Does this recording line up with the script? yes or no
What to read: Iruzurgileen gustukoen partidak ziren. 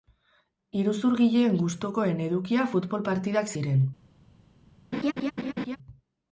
no